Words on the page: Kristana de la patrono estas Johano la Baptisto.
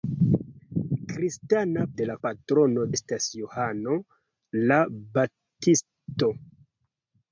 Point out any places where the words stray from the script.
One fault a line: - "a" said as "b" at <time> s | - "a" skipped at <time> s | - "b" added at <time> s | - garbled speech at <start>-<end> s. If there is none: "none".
none